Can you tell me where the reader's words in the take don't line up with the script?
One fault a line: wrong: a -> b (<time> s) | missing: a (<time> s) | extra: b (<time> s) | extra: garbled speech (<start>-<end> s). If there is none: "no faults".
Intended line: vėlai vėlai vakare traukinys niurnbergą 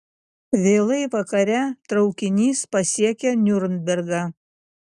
missing: vėlai (1.0 s)
extra: pasiekia (2.8 s)